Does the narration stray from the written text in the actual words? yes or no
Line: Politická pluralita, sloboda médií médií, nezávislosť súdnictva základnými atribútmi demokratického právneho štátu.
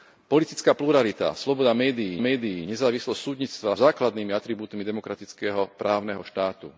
no